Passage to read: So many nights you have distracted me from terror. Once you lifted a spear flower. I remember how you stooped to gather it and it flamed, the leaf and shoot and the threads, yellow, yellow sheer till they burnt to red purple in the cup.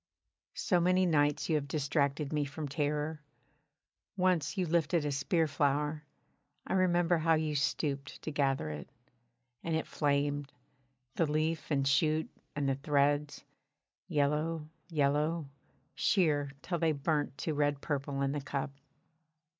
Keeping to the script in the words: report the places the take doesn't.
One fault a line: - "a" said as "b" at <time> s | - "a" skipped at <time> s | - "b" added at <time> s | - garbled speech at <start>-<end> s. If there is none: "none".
none